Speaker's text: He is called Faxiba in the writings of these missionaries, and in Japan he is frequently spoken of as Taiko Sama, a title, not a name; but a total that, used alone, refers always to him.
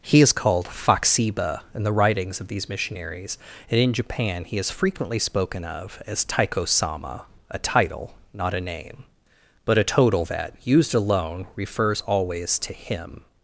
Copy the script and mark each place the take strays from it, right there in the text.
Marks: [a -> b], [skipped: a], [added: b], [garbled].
He is called Faxiba in the writings of these missionaries, and in Japan he is frequently spoken of as Taiko Sama, a title, not a name; but a total that, used alone, refers always to him.